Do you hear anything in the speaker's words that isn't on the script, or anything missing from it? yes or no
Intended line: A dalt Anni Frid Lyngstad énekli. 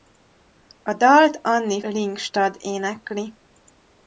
yes